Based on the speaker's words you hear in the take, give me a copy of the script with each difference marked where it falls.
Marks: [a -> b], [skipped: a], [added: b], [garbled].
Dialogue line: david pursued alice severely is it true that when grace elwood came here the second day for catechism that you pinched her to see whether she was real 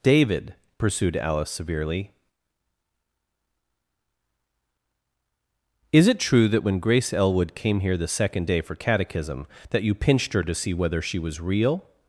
david pursued alice severely is it true that when grace elwood came here the second day for catechism that you pinched her to see whether she was real